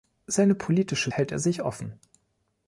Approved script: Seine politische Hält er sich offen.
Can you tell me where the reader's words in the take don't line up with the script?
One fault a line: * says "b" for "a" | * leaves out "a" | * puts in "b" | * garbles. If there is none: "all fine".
all fine